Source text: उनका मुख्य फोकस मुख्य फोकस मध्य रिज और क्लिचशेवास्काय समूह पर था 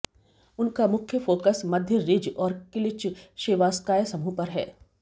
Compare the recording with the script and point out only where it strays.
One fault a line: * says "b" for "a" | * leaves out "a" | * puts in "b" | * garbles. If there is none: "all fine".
* leaves out "मुख्य फोकस"
* says "है" for "था"